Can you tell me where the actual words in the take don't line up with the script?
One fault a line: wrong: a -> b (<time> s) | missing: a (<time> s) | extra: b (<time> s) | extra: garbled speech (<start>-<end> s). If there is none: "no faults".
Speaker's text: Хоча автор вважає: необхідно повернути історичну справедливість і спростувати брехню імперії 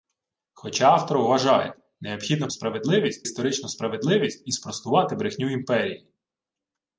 wrong: повернути -> справедливість (2.5 s)